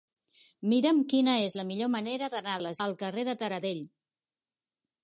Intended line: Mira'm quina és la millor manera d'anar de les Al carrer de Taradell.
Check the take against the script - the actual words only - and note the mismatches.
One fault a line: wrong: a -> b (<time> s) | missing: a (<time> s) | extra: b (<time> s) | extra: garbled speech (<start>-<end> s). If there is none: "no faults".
no faults